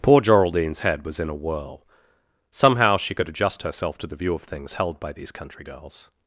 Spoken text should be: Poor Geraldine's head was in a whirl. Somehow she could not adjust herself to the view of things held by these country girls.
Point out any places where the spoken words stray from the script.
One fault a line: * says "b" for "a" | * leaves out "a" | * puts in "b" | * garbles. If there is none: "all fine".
* leaves out "not"